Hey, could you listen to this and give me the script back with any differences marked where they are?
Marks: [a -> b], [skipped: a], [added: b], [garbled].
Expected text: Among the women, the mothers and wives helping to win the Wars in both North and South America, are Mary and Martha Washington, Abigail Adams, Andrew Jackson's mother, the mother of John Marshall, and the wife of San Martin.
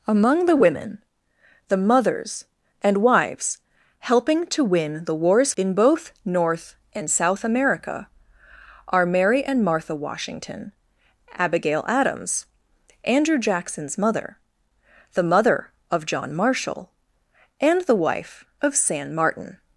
Among the women, the mothers and wives helping to win the Wars in both North and South America, are Mary and Martha Washington, Abigail Adams, Andrew Jackson's mother, the mother of John Marshall, and the wife of San Martin.